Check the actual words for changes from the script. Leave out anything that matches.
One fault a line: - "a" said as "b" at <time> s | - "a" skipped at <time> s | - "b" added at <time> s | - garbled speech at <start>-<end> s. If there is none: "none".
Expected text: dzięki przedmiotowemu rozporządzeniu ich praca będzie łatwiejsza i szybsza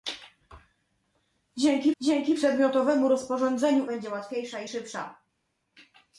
- "dzięki" added at 2.0 s
- "ich praca" skipped at 3.9 s